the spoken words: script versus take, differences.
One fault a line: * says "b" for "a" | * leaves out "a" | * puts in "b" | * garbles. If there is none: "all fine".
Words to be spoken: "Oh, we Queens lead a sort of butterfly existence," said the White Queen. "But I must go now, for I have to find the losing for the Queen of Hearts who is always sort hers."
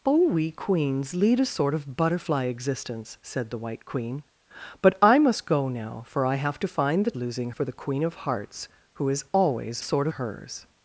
all fine